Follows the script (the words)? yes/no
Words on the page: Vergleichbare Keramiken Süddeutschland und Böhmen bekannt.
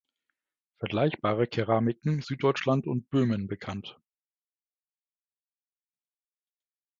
yes